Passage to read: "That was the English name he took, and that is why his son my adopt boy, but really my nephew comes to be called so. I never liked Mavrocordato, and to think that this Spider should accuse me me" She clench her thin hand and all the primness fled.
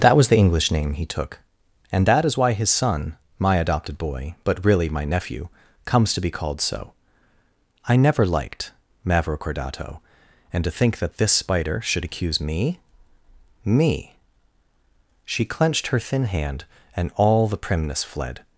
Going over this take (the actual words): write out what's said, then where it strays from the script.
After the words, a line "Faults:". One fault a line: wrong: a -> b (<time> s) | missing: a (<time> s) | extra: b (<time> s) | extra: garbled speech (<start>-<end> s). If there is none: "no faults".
"That was the English name he took, and that is why his son my adopted boy, but really my nephew comes to be called so. I never liked Mavrocordato, and to think that this Spider should accuse me me" She clenched her thin hand and all the primness fled.
Faults:
wrong: adopt -> adopted (3.6 s)
wrong: clench -> clenched (15.4 s)